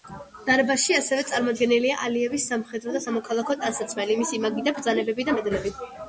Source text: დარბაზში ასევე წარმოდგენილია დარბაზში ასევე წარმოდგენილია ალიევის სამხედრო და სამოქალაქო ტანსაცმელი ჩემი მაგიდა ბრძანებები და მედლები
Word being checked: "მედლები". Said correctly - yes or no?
yes